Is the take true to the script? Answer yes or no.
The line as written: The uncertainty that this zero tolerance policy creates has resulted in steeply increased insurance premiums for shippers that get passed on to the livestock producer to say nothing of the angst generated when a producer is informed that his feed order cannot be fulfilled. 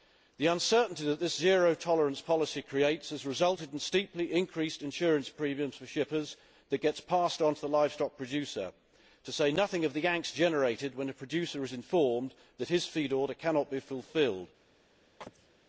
yes